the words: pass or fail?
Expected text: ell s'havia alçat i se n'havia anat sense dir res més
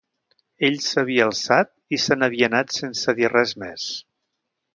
pass